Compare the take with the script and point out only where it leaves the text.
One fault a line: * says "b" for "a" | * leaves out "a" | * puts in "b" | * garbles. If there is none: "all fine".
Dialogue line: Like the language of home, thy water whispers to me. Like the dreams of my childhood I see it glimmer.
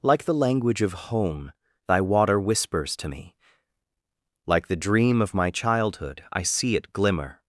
* says "dream" for "dreams"